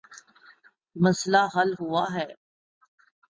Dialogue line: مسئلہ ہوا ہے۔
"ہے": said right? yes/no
yes